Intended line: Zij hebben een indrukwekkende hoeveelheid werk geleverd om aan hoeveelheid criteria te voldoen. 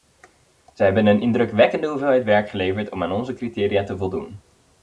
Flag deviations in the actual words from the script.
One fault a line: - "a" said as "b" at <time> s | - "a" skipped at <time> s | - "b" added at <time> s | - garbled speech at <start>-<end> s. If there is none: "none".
- "hoeveelheid" said as "onze" at 3.1 s